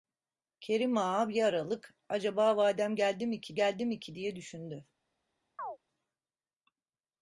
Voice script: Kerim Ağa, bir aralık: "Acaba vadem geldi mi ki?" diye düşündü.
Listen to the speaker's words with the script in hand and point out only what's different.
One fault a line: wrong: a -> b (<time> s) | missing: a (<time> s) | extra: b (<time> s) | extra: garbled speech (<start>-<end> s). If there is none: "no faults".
extra: geldi mi ki (3.5 s)